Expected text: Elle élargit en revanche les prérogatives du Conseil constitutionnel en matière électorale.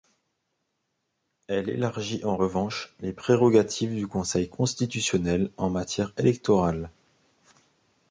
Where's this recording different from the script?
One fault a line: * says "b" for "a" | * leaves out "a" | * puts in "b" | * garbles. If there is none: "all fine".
all fine